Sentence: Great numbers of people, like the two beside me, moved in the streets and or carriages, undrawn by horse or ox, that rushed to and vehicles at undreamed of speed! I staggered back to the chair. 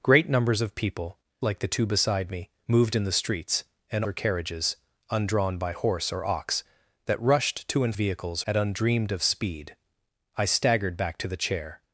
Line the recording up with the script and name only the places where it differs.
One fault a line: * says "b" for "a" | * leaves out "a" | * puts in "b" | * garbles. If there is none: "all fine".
all fine